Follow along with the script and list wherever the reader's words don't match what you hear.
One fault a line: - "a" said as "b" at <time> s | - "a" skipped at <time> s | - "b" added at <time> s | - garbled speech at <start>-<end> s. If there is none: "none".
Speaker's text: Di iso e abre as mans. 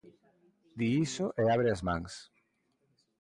none